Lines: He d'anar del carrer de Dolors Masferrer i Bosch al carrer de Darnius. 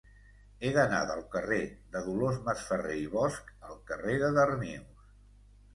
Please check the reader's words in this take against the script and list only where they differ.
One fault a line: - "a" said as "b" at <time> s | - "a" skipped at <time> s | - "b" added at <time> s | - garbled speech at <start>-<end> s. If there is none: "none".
none